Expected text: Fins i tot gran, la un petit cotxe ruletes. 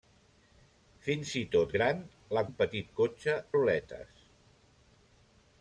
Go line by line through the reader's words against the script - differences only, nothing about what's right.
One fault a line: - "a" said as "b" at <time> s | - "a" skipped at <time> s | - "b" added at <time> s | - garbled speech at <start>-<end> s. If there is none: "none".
none